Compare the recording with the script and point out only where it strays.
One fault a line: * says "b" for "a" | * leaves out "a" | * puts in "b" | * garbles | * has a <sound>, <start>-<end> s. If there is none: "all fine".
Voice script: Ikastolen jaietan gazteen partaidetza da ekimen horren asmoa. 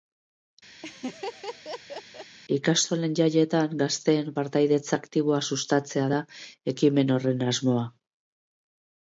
* has a laugh, 0.8-2.4 s
* puts in "aktiboa sustatzea"